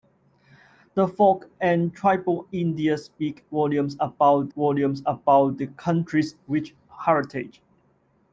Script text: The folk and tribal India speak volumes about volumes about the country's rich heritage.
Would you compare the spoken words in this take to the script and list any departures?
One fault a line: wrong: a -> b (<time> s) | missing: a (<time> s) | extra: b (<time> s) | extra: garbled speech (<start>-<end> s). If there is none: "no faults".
no faults